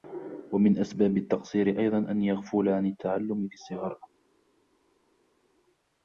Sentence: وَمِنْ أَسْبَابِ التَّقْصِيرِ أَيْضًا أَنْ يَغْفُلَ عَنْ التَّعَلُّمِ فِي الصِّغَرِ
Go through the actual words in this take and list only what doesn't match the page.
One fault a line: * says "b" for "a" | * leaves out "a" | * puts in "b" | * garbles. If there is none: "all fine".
all fine